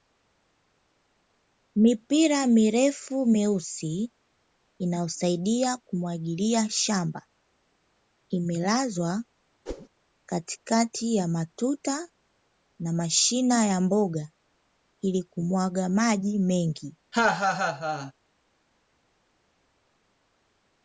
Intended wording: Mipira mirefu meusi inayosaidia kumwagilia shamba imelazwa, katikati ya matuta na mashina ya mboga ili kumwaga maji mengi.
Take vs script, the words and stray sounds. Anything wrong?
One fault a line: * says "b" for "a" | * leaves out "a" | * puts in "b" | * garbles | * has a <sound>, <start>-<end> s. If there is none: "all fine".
* has a whoosh, 9.7-9.9 s
* has a laugh, 17.1-18.1 s